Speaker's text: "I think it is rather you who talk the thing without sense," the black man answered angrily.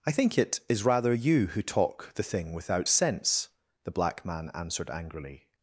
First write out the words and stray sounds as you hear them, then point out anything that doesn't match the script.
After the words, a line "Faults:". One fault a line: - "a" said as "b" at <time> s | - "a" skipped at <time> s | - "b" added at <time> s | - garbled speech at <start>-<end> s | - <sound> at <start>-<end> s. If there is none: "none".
"I think it is rather you who talk the thing without sense," the black man answered angrily.
Faults:
none